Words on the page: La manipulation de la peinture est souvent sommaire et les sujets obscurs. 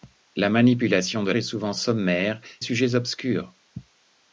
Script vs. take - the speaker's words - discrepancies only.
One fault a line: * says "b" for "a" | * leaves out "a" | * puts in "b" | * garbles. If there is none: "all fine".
* leaves out "la peinture"
* leaves out "et les"